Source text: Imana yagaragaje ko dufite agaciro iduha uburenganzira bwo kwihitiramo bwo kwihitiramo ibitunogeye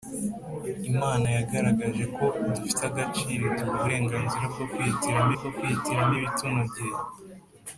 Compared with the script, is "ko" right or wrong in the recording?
right